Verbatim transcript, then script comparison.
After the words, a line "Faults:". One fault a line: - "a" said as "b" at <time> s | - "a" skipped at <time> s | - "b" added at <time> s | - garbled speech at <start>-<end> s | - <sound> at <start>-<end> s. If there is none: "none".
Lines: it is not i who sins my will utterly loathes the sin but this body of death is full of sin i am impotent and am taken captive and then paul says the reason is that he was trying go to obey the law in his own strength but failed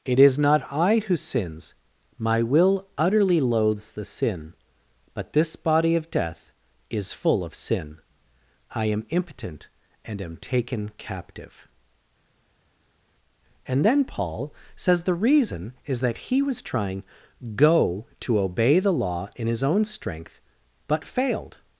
it is not i who sins my will utterly loathes the sin but this body of death is full of sin i am impotent and am taken captive and then paul says the reason is that he was trying go to obey the law in his own strength but failed
Faults:
none